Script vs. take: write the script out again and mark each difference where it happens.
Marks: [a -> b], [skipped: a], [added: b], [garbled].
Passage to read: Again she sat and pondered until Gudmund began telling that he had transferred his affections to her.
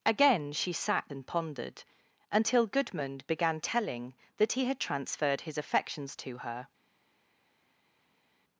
Again she sat and pondered until Gudmund began telling that he had transferred his affections to her.